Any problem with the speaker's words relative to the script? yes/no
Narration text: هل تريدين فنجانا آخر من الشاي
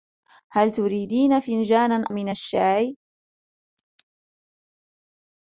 yes